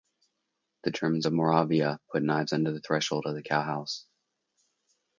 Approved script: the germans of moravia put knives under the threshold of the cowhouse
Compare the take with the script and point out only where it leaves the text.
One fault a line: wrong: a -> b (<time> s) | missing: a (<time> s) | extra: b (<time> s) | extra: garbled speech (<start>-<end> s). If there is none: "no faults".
no faults